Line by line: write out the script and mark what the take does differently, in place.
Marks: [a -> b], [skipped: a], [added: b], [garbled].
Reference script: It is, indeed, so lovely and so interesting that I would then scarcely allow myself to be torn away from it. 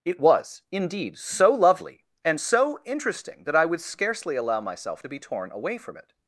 It [is, -> was] indeed, so lovely and so interesting that I would [skipped: then] scarcely allow myself to be torn away from it.